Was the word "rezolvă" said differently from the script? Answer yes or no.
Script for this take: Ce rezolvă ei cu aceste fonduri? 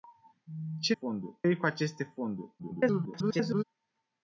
yes